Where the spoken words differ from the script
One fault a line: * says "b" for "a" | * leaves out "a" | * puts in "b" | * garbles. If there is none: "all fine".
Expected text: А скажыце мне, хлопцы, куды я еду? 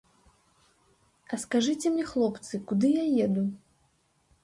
all fine